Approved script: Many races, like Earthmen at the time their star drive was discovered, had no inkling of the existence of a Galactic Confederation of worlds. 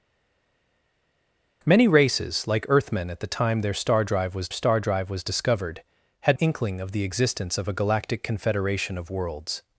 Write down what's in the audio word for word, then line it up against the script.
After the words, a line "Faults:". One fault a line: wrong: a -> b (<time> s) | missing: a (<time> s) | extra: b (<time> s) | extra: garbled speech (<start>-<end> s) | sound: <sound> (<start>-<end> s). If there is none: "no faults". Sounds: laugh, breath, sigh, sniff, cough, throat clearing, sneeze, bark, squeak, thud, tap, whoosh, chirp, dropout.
Many races, like Earthmen at the time their star drive was star drive was discovered, had inkling of the existence of a Galactic Confederation of worlds.
Faults:
extra: star drive was (4.5 s)
missing: no (6.4 s)